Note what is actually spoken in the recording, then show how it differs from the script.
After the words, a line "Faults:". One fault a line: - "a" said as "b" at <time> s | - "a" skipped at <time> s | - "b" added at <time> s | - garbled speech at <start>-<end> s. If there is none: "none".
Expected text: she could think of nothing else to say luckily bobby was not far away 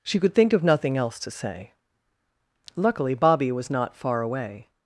she could think of nothing else to say luckily bobby was not far away
Faults:
none